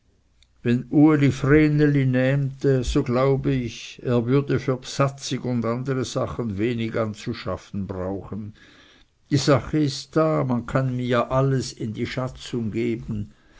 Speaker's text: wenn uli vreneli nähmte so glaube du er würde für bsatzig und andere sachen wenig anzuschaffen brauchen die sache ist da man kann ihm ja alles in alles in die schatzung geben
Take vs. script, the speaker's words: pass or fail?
fail